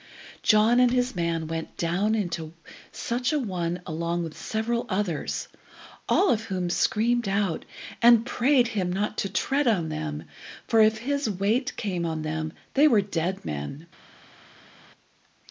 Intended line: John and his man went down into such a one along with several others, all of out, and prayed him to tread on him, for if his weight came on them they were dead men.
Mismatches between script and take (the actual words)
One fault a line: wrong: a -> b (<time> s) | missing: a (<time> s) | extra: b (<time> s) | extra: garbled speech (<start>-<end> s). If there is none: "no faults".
extra: whom screamed (6.5 s)
extra: not (8.9 s)
wrong: him -> them (9.9 s)